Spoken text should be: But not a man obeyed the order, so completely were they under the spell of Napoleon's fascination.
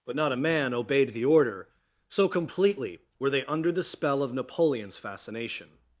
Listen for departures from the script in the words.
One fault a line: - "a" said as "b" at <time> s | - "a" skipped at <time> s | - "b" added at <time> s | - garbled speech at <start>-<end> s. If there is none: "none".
none